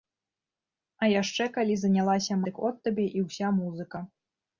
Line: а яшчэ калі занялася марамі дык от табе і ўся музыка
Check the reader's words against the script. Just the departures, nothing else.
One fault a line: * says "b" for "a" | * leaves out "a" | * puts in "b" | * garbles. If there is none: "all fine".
* leaves out "марамі"